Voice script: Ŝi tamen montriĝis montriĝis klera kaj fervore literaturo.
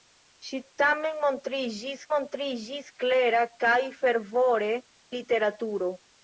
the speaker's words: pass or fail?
pass